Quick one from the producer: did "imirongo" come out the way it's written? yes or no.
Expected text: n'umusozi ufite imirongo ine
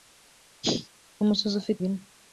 no